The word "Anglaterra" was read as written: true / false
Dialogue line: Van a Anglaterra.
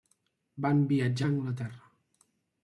true